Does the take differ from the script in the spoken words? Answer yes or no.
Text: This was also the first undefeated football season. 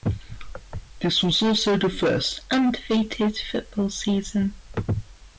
no